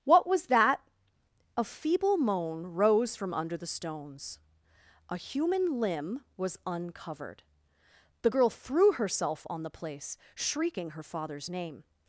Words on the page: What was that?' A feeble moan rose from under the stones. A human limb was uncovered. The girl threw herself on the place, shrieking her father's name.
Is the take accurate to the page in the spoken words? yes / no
yes